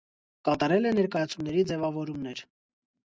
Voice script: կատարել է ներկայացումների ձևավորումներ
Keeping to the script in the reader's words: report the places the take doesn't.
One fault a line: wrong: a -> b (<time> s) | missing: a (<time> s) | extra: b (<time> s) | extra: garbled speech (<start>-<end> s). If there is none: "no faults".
no faults